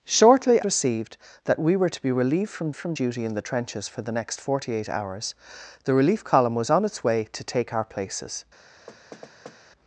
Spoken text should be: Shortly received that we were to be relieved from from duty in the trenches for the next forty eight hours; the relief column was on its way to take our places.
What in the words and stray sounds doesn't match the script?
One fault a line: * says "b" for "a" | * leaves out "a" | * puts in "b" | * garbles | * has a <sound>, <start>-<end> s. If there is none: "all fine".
* has a thud, 8.9-9.6 s